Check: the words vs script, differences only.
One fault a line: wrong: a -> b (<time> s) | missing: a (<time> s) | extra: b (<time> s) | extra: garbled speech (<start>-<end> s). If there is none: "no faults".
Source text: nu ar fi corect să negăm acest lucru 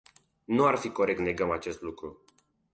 missing: să (1.2 s)